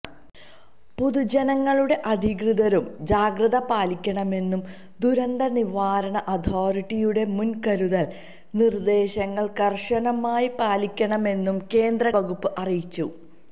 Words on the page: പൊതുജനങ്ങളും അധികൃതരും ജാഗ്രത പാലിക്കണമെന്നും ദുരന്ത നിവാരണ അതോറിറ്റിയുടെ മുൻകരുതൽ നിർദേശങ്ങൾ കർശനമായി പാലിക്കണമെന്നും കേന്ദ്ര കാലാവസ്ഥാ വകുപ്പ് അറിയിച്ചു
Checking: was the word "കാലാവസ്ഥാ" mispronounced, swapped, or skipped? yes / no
yes